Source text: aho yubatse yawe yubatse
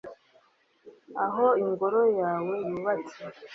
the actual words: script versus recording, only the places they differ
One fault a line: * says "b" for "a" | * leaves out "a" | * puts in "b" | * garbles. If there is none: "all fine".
* says "ingoro" for "yubatse"